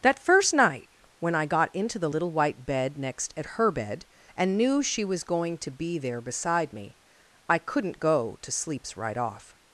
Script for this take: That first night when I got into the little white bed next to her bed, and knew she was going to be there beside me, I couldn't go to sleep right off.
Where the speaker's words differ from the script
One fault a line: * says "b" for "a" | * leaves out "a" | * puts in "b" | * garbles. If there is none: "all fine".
* says "at" for "to"
* says "sleeps" for "sleep"